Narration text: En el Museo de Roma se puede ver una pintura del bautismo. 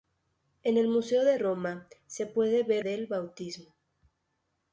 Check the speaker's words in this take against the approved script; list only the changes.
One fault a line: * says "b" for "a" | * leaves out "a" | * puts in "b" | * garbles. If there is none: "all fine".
* leaves out "una pintura"